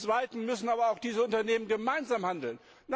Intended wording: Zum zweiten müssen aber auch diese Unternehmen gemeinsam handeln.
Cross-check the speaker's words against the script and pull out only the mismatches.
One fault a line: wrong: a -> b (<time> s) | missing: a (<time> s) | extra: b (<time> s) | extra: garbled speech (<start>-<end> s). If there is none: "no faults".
no faults